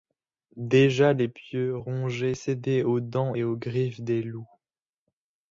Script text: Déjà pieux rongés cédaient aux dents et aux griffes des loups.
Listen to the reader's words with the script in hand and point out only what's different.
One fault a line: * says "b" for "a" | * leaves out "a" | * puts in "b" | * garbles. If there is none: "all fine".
* puts in "les"